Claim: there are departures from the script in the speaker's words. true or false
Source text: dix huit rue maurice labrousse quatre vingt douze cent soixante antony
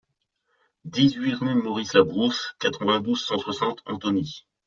false